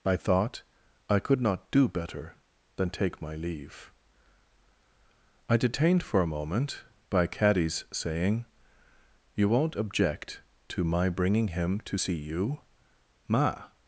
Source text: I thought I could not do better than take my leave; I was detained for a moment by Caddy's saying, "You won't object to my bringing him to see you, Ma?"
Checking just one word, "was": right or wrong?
wrong